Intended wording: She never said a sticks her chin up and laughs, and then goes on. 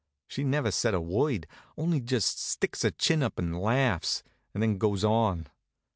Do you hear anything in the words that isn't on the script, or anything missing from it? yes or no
yes